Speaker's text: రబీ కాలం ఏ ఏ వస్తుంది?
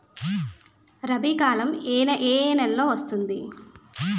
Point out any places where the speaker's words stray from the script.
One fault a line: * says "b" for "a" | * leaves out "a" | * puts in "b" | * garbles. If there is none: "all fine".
* puts in "నెలలో"